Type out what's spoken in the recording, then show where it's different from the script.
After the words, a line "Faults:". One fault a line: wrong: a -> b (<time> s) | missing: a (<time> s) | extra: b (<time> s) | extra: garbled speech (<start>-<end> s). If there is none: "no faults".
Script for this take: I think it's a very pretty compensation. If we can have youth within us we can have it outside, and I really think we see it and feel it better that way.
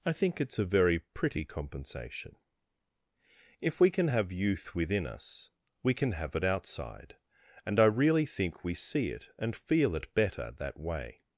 I think it's a very pretty compensation. If we can have youth within us we can have it outside, and I really think we see it and feel it better that way.
Faults:
no faults